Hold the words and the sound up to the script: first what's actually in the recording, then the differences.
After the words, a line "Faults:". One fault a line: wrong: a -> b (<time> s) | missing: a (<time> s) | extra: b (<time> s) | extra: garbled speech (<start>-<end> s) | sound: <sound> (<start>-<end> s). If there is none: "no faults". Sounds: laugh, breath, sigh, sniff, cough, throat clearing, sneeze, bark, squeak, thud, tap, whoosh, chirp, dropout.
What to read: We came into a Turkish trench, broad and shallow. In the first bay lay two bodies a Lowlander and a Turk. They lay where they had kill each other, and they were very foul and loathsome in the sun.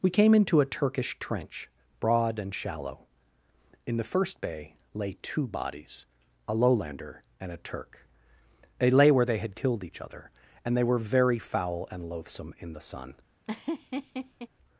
We came into a Turkish trench, broad and shallow. In the first bay lay two bodies a Lowlander and a Turk. They lay where they had killed each other, and they were very foul and loathsome in the sun.
Faults:
wrong: kill -> killed (9.6 s)
sound: laugh (13.4-14.5 s)